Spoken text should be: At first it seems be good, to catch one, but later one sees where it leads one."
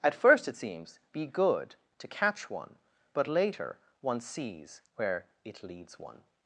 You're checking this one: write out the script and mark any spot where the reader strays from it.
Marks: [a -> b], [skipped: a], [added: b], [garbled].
At first it seems be good, to catch one, but later one sees where it leads one."